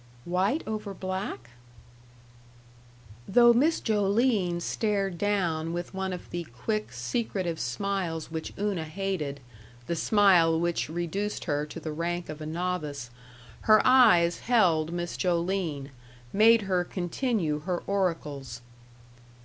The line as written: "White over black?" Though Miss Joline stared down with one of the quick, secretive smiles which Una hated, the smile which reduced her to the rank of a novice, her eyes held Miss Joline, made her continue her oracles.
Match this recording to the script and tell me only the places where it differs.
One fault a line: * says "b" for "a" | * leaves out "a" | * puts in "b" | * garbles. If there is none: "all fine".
all fine